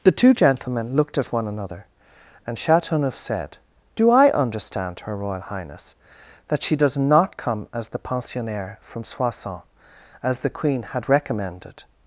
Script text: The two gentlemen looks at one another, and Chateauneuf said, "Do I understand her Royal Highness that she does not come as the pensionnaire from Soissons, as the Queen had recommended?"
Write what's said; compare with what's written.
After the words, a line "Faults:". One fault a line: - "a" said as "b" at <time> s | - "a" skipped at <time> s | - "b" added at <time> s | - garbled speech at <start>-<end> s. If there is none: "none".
The two gentlemen looked at one another, and Chateauneuf said, "Do I understand her Royal Highness that she does not come as the pensionnaire from Soissons, as the Queen had recommended?"
Faults:
- "looks" said as "looked" at 1.0 s